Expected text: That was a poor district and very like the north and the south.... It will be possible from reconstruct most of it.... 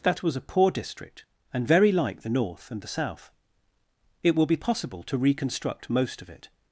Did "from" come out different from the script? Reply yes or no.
yes